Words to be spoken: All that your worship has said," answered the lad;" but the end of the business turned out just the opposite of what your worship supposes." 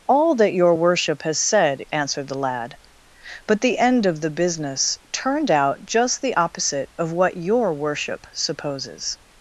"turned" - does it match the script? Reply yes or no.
yes